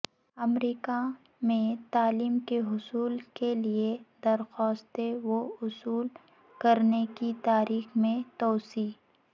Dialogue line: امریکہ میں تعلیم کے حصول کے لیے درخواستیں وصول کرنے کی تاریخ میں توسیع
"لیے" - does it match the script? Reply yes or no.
yes